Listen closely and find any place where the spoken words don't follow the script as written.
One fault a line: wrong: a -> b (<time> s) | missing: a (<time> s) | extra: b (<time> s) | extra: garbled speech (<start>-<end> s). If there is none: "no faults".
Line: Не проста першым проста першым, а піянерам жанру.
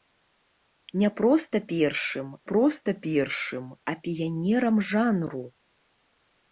no faults